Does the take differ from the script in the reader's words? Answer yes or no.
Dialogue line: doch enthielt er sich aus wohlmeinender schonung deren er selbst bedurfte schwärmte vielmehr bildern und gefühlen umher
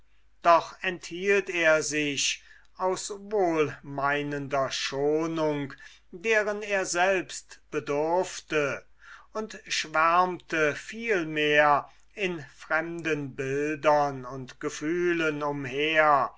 yes